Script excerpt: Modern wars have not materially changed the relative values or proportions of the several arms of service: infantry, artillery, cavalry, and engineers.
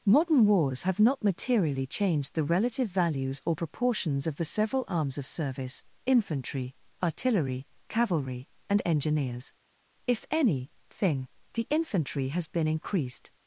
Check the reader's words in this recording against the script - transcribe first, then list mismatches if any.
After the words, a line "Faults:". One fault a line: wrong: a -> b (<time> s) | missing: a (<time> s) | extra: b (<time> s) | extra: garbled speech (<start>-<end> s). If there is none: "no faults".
Modern wars have not materially changed the relative values or proportions of the several arms of service: infantry, artillery, cavalry, and engineers. If any thing, the infantry has been increased
Faults:
extra: If any thing the infantry has been increased (10.1 s)